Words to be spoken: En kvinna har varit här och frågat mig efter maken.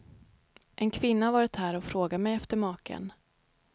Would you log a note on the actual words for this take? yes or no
no